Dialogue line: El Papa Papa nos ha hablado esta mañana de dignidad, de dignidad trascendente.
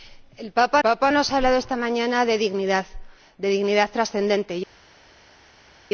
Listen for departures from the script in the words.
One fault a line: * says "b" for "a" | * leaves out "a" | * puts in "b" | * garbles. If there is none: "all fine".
all fine